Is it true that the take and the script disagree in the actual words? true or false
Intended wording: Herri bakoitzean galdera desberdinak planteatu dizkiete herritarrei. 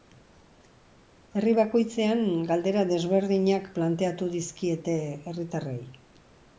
false